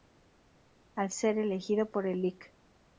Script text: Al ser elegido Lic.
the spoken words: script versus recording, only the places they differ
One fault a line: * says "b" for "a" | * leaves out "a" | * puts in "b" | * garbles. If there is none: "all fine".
* puts in "por el"